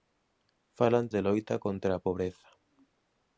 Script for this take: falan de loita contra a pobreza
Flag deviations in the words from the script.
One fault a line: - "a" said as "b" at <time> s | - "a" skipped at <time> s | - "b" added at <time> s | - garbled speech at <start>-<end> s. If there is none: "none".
none